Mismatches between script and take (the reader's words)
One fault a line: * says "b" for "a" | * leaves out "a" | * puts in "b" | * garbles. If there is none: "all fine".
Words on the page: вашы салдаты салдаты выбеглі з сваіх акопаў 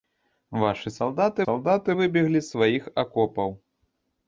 all fine